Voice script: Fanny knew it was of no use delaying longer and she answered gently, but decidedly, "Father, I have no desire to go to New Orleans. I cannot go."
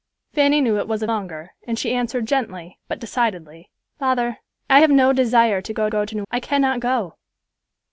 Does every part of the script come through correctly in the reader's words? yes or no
no